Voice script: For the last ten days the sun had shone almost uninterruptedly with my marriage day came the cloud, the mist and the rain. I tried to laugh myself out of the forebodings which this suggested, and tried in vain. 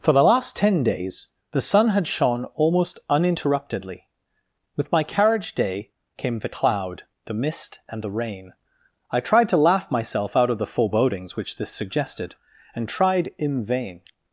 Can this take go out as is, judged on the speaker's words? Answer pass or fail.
fail